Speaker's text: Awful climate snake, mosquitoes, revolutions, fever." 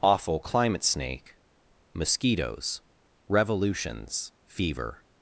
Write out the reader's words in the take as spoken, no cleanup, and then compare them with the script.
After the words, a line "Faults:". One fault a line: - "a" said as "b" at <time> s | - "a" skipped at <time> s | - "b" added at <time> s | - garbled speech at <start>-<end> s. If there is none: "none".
Awful climate snake, mosquitoes, revolutions, fever."
Faults:
none